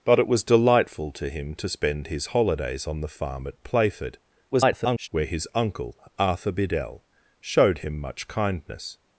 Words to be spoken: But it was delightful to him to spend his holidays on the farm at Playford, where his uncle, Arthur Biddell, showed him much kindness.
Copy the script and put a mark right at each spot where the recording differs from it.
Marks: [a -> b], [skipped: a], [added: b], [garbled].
But it was delightful to him to spend his holidays on the farm at Playford, [garbled] where his uncle, Arthur Biddell, showed him much kindness.